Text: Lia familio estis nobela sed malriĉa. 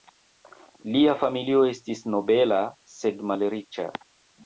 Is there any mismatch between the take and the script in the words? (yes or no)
no